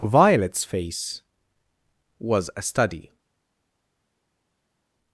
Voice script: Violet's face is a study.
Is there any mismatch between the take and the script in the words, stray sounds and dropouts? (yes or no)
yes